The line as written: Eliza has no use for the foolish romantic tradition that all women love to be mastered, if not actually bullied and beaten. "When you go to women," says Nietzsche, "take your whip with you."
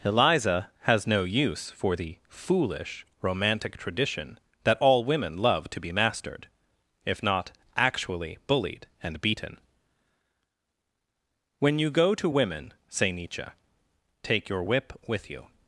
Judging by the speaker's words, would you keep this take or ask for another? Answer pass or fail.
fail